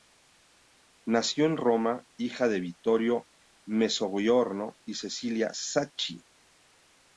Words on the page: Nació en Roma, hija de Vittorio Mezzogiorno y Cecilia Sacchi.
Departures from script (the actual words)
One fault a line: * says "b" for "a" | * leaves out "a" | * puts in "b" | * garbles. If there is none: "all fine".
all fine